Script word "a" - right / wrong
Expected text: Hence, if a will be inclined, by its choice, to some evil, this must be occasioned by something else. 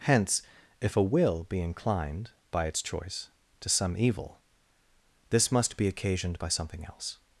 right